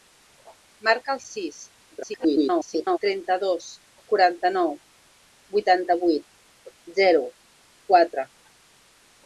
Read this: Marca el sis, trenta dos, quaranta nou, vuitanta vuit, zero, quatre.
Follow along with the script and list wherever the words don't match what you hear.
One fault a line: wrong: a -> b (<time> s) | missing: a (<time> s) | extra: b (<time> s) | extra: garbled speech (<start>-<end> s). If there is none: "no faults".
extra: garbled speech (1.9-3.0 s)